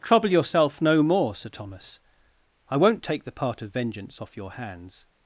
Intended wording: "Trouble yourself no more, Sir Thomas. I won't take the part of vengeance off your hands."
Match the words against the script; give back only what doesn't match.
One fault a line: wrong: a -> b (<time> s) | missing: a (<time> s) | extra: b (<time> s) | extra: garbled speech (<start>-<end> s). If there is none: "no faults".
no faults